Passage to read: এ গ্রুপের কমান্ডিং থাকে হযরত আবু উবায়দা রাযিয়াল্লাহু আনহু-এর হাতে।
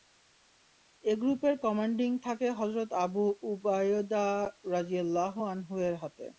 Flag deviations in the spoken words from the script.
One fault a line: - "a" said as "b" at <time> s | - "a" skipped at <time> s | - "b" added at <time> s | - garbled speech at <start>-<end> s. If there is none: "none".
none